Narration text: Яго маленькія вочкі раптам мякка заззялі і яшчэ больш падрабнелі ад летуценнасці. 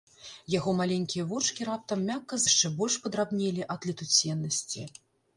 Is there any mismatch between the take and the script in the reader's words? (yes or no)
yes